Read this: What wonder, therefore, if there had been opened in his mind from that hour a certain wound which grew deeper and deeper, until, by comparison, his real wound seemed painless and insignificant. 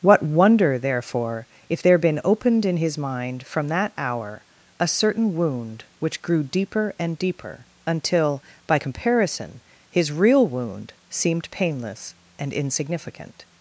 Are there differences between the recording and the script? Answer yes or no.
yes